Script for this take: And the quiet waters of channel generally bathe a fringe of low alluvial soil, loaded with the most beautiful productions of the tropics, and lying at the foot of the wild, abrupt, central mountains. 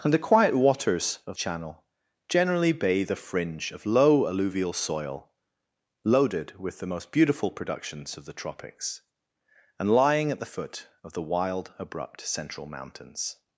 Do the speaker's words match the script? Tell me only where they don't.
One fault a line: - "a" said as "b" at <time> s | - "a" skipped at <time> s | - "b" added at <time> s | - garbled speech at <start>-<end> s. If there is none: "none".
none